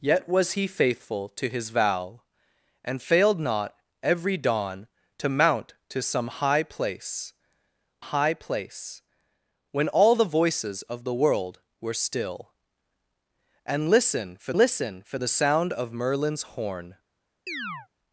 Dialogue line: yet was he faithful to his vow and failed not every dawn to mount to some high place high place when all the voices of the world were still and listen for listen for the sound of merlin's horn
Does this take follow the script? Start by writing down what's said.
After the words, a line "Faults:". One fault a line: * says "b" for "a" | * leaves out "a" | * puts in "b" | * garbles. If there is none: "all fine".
yet was he faithful to his vow and failed not every dawn to mount to some high place high place when all the voices of the world were still and listen for listen for the sound of merlin's horn
Faults:
all fine